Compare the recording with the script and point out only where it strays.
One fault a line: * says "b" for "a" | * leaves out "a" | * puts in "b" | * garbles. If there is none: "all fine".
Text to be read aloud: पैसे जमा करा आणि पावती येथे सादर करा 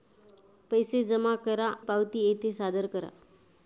* leaves out "आणि"